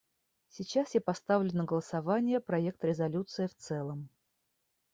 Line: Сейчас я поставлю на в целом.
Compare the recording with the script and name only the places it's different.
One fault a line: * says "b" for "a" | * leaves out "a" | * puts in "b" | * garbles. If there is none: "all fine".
* puts in "голосование проект резолюции"